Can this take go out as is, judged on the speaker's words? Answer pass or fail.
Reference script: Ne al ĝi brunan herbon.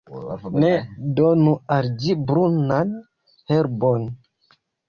fail